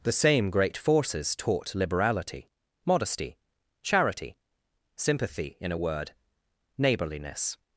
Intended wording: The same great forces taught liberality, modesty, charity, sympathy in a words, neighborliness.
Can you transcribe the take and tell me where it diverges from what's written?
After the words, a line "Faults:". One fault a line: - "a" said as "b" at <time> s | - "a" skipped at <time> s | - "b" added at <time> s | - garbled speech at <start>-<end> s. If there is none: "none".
The same great forces taught liberality, modesty, charity, sympathy in a word, neighborliness.
Faults:
- "words" said as "word" at 5.8 s